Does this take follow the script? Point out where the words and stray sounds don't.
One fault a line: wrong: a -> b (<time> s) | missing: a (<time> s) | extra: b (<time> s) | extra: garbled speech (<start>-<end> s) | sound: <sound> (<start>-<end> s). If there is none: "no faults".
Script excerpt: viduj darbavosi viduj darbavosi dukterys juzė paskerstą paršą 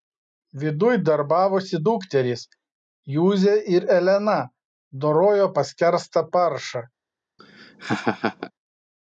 wrong: viduj darbavosi dukterys juzė -> dukterys juzė ir elena dorojo (1.9 s)
sound: laugh (7.4-8.5 s)